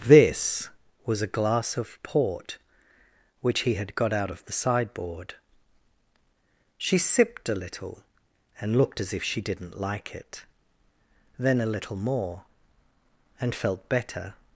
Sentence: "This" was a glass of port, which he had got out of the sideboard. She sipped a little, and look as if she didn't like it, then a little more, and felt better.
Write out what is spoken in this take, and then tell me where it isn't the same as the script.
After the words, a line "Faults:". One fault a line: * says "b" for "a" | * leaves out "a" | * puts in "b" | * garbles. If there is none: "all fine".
"This" was a glass of port, which he had got out of the sideboard. She sipped a little, and looked as if she didn't like it, then a little more, and felt better.
Faults:
* says "looked" for "look"